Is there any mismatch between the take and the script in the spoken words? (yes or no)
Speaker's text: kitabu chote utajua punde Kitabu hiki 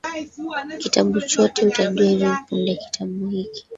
yes